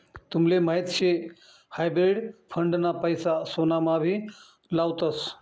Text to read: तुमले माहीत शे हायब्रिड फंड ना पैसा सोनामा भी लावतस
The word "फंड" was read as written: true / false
true